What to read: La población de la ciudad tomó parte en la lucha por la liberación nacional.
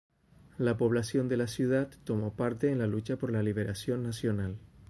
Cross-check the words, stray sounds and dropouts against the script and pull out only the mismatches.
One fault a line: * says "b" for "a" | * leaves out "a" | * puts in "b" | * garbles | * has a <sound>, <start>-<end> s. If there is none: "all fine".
all fine